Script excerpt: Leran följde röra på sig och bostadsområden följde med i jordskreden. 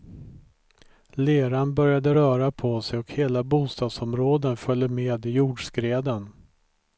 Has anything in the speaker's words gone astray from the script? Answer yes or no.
yes